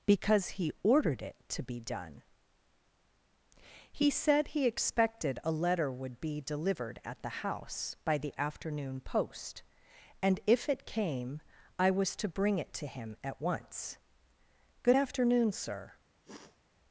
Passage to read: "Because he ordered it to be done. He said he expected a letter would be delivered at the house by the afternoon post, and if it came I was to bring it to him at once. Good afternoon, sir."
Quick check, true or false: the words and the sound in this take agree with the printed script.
false